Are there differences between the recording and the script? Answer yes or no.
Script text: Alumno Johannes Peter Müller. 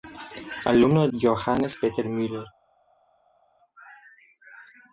no